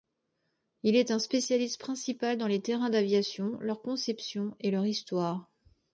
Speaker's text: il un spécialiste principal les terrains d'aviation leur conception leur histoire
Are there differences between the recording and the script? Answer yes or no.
yes